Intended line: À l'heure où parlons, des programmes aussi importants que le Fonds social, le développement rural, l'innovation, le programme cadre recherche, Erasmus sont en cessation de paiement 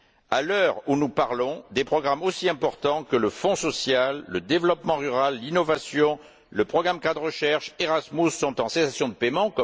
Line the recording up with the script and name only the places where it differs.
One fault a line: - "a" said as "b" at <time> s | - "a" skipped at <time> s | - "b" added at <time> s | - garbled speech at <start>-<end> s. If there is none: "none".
- "nous" added at 0.9 s